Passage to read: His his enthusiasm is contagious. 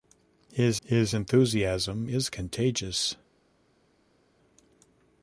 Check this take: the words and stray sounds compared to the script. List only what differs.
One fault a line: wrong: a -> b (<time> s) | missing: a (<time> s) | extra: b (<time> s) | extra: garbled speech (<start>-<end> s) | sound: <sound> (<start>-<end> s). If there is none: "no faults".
no faults